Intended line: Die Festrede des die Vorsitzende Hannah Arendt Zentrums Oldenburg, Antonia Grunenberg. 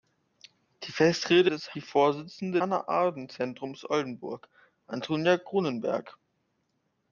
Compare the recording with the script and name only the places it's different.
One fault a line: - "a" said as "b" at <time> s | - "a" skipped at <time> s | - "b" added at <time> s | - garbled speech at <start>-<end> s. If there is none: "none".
none